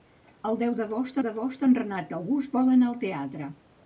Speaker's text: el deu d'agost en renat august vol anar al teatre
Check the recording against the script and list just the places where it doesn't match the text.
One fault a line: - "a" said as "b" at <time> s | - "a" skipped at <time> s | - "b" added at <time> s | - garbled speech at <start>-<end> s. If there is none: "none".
- "d'agost" added at 1.2 s